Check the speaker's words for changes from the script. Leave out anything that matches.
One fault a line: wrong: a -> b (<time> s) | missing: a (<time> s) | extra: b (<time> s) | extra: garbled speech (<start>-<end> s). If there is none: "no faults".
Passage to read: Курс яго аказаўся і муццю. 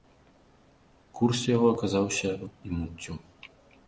no faults